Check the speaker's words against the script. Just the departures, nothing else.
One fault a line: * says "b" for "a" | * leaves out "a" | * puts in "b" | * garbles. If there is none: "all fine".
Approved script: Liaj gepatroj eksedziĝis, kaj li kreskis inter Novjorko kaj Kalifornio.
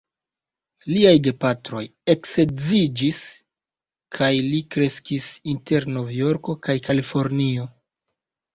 all fine